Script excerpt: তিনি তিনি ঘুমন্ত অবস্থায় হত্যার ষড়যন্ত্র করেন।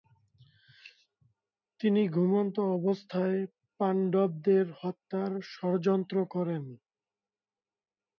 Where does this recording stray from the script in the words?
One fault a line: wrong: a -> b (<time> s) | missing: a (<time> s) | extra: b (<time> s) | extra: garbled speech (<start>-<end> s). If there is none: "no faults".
missing: তিনি (2.0 s)
extra: পাণ্ডবদের (3.8 s)